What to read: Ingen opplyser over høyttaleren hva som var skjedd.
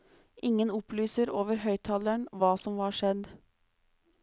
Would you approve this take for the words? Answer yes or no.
yes